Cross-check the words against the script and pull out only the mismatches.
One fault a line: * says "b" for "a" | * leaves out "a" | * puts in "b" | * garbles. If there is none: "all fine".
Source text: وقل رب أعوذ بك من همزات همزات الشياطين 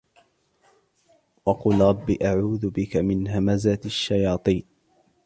* leaves out "همزات"